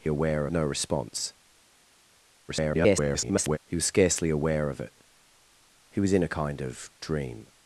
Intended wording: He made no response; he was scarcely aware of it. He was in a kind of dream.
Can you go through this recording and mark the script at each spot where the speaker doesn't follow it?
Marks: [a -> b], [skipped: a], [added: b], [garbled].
He [made -> aware] no response; [garbled] he was scarcely aware of it. He was in a kind of dream.